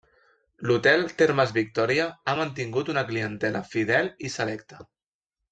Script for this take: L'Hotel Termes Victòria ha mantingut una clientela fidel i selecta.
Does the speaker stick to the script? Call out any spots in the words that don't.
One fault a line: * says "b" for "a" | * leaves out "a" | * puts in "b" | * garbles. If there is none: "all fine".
all fine